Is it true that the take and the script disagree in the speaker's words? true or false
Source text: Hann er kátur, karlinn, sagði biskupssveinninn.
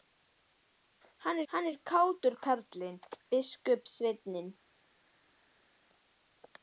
true